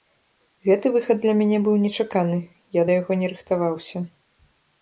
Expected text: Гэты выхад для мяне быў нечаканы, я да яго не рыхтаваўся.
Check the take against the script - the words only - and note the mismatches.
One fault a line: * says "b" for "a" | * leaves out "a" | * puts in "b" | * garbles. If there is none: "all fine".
all fine